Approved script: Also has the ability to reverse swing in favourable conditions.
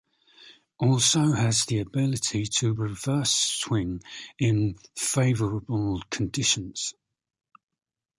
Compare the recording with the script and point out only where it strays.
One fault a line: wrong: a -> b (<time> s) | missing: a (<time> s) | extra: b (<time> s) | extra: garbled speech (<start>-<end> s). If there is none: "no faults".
no faults